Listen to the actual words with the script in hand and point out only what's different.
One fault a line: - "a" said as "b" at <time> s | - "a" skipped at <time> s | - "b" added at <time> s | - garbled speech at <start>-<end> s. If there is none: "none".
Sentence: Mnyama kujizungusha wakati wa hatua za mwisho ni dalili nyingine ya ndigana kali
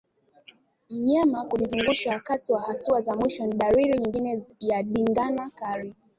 none